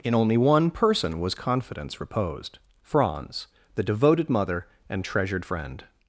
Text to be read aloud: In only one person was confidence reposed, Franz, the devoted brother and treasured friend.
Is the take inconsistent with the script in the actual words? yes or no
yes